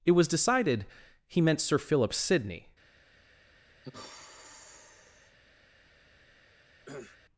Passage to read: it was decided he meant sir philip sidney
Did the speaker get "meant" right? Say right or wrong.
right